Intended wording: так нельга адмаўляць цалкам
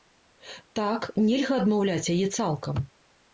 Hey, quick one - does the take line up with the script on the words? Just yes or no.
no